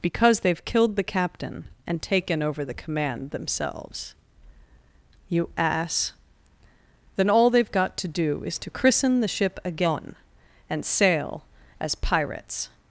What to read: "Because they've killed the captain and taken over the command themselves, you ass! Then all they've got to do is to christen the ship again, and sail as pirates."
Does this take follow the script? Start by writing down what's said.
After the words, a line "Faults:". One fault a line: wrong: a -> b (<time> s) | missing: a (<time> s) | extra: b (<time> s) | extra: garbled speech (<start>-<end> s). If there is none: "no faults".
"Because they've killed the captain and taken over the command themselves, you ass! Then all they've got to do is to christen the ship again, and sail as pirates."
Faults:
no faults